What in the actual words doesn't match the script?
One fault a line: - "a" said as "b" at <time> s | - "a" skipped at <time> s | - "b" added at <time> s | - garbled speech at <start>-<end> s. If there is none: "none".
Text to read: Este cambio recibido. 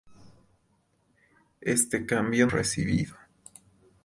none